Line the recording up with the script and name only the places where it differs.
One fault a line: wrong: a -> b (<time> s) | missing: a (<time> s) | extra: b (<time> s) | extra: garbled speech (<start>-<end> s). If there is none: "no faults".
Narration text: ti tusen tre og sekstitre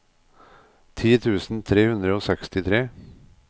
extra: hundre (1.9 s)